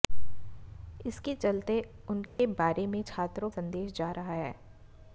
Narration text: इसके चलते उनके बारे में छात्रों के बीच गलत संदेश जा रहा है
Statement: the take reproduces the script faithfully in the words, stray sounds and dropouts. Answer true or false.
false